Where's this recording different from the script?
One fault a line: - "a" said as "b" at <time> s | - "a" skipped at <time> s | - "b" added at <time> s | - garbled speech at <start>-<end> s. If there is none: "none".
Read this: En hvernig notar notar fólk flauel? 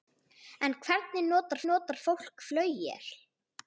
none